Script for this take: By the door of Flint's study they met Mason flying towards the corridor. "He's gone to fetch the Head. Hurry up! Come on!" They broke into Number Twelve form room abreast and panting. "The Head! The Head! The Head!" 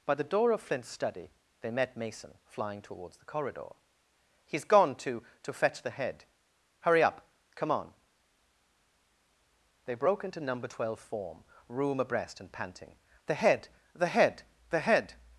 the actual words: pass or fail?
fail